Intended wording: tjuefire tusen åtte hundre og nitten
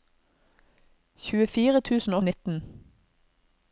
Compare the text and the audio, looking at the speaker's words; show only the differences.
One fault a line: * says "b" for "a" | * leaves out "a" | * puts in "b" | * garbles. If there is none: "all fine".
* leaves out "åtte hundre"